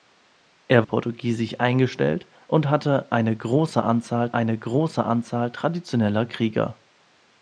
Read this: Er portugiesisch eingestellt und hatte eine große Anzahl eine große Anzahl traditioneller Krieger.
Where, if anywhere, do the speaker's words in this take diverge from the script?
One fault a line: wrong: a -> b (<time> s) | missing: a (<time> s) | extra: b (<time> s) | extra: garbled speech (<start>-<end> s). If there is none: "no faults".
no faults